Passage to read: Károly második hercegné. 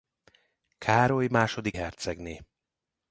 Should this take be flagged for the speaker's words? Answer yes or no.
no